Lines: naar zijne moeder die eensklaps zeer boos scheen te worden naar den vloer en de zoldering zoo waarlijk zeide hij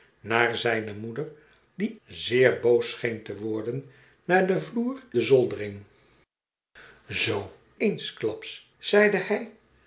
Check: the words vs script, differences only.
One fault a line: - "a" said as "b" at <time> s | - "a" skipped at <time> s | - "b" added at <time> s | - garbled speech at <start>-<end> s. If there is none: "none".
- "eensklaps" skipped at 1.9 s
- "en" skipped at 5.0 s
- "waarlijk" said as "eensklaps" at 7.8 s